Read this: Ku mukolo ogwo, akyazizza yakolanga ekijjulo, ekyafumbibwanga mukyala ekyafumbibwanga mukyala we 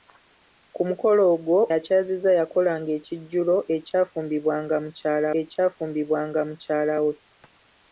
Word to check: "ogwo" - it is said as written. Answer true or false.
true